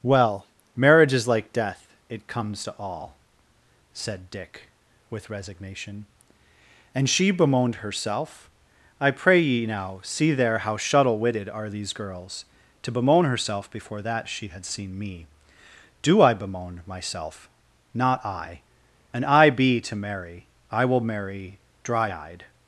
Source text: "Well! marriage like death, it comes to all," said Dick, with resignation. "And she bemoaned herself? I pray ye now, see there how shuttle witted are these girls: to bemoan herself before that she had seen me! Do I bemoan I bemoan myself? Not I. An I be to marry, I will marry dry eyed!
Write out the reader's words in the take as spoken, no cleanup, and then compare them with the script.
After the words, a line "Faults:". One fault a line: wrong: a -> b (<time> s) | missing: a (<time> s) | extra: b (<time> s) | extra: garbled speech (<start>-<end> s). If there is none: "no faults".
"Well! marriage is like death, it comes to all," said Dick, with resignation. "And she bemoaned herself? I pray ye now, see there how shuttle witted are these girls: to bemoan herself before that she had seen me! Do I bemoan myself? Not I. An I be to marry, I will marry dry eyed!
Faults:
extra: is (1.1 s)
missing: I bemoan (16.8 s)